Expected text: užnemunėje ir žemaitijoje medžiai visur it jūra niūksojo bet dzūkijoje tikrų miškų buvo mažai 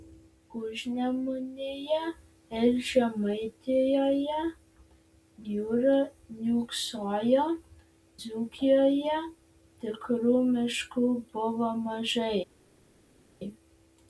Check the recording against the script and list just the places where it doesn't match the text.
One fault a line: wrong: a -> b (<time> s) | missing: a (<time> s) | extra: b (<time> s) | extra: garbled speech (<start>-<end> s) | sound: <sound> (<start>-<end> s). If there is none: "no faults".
missing: medžiai visur it (4.4 s)
missing: bet (7.4 s)